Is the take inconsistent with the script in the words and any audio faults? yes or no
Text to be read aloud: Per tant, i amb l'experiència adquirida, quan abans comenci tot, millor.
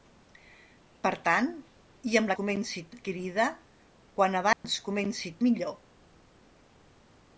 yes